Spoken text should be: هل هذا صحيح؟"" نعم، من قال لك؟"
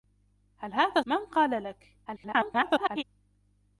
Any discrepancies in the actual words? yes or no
yes